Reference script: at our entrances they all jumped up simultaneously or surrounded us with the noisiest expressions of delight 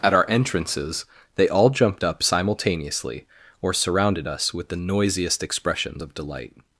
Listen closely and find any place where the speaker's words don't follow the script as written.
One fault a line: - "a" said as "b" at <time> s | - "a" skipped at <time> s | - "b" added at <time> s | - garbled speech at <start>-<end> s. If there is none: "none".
none